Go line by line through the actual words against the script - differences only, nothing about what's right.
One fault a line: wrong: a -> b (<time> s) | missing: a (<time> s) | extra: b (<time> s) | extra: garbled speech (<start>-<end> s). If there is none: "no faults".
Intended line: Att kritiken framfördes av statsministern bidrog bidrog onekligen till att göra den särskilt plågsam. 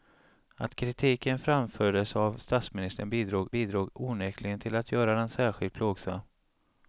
no faults